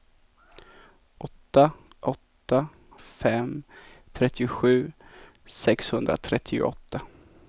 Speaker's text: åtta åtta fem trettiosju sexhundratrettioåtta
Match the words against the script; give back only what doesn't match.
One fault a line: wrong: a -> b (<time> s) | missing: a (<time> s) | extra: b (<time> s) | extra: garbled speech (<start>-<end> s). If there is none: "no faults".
no faults